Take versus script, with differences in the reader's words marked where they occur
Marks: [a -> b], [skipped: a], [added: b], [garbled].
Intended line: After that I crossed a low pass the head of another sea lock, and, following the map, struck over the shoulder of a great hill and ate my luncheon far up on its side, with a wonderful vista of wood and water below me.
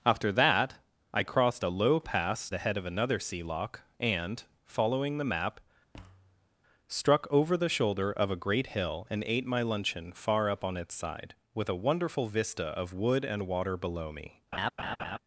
After that I crossed a low pass the head of another sea lock, and, following the map, struck over the shoulder of a great hill and ate my luncheon far up on its side, with a wonderful vista of wood and water below me.